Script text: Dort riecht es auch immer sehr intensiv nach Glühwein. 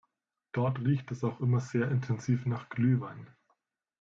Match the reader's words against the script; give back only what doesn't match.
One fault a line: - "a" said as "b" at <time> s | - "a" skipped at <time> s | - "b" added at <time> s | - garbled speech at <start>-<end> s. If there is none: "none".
none